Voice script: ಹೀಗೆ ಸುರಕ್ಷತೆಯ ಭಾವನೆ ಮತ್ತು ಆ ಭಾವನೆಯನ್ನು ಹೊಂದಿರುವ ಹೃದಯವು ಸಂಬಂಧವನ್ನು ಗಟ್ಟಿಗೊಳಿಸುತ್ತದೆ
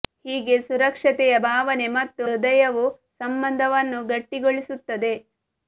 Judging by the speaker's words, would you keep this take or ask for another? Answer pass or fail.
fail